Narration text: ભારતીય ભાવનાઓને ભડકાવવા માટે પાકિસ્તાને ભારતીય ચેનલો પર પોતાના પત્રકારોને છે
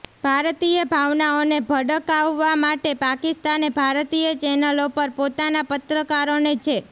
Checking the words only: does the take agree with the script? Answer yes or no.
yes